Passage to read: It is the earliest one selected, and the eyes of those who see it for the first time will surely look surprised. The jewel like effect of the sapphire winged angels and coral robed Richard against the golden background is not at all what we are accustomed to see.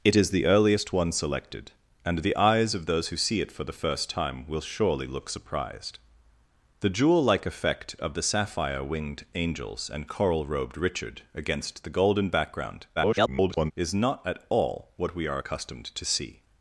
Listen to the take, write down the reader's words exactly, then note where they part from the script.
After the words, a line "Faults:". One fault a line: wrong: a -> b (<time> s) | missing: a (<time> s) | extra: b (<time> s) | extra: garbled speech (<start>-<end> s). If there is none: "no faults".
It is the earliest one selected, and the eyes of those who see it for the first time will surely look surprised. The jewel like effect of the sapphire winged angels and coral robed Richard against the golden background [garbled] is not at all what we are accustomed to see.
Faults:
extra: garbled speech (13.0-13.7 s)